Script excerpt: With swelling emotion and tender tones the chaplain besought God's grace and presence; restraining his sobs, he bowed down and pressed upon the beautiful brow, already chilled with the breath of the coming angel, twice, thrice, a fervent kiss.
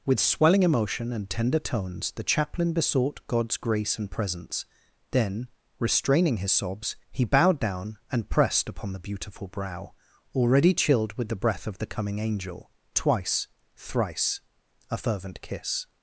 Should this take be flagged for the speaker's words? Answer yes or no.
yes